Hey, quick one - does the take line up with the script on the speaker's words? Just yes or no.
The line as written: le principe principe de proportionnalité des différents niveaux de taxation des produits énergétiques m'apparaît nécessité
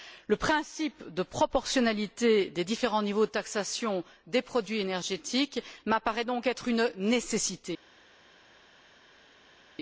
no